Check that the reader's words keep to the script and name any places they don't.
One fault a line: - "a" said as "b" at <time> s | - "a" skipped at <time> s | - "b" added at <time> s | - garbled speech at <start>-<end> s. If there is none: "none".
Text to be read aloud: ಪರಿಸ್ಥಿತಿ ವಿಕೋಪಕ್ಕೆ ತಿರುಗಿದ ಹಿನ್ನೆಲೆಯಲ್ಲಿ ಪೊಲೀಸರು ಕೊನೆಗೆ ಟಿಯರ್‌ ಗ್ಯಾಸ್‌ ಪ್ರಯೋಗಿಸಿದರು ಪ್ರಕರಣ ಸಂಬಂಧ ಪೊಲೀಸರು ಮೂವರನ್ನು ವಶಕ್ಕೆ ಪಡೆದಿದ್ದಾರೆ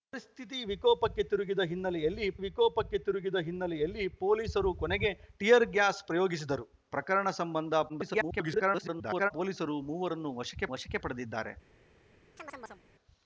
- "ವಿಕೋಪಕ್ಕೆ ತಿರುಗಿದ ಹಿನ್ನೆಲೆಯಲ್ಲಿ" added at 2.4 s
- garbled speech at 7.9-9.3 s
- "ವಶಕ್ಕೆ" added at 10.7 s